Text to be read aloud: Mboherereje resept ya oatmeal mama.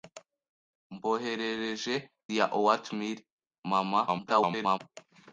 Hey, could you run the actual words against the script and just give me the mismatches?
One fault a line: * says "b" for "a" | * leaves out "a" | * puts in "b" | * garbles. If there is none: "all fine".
* leaves out "resept"
* garbles